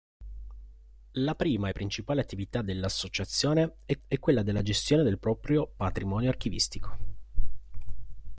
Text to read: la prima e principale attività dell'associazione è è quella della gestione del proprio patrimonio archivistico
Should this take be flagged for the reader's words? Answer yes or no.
no